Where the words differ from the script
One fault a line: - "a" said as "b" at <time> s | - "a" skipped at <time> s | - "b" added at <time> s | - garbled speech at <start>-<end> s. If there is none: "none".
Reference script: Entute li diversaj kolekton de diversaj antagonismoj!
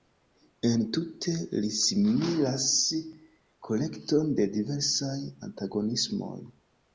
- "diversaj" said as "similas" at 1.8 s